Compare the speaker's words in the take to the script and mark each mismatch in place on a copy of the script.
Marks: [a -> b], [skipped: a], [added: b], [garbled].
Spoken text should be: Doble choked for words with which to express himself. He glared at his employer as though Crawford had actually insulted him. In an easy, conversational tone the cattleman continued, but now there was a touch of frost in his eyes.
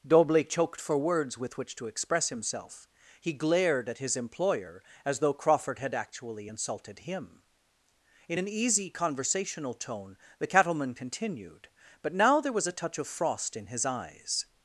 Doble choked for words with which to express himself. He glared at his employer as though Crawford had actually insulted him. In an easy, conversational tone the cattleman continued, but now there was a touch of frost in his eyes.